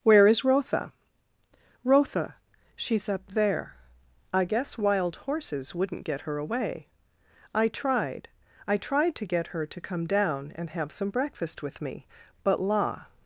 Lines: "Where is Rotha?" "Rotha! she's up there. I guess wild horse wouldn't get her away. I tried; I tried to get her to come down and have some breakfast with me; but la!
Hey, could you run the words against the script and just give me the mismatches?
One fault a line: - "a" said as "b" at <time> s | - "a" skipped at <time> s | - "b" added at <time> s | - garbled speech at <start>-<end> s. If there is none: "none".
- "horse" said as "horses" at 5.2 s